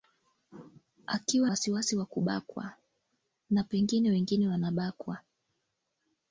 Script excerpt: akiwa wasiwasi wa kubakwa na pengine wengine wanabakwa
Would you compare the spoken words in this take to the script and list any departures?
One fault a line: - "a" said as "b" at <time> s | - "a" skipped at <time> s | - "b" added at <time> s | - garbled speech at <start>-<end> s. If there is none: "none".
none